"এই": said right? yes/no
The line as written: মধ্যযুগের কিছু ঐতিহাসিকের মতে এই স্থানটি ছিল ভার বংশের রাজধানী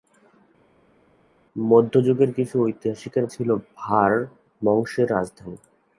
no